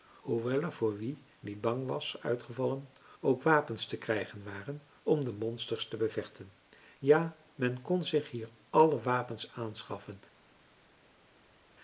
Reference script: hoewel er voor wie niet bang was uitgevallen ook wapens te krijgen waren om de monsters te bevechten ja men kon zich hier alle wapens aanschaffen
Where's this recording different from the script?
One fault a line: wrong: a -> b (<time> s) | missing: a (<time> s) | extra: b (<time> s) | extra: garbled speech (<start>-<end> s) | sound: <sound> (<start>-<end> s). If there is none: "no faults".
no faults